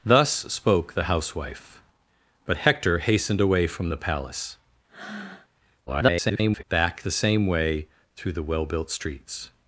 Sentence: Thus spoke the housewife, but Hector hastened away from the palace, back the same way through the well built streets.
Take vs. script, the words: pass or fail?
fail